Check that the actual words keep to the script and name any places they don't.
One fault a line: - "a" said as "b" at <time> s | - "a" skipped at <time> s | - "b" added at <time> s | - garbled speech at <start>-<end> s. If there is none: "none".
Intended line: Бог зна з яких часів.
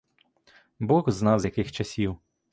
none